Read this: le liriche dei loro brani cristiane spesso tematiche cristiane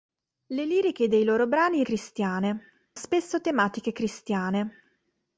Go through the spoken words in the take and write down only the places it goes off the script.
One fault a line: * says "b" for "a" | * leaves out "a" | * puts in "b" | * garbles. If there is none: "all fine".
all fine